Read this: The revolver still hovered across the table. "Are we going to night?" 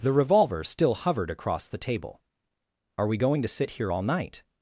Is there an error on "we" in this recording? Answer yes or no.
no